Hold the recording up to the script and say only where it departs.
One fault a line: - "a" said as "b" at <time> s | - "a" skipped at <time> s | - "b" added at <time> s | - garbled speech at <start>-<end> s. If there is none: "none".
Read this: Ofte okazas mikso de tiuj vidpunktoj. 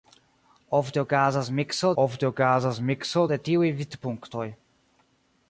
- "ofte okazas mikso" added at 2.0 s